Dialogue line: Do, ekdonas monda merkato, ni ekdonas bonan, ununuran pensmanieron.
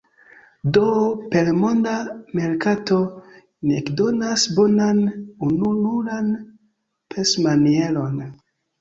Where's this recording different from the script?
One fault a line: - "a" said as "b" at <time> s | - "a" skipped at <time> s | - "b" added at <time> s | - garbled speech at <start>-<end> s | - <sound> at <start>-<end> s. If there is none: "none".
- "ekdonas" said as "per" at 1.3 s